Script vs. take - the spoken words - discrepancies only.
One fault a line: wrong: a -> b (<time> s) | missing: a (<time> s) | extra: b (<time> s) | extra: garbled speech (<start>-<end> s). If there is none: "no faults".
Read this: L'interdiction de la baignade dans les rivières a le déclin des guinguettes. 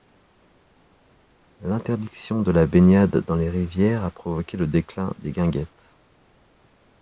extra: provoqué (4.1 s)